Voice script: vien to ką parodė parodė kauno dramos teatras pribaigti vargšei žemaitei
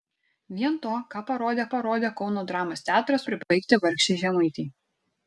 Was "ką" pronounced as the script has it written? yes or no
yes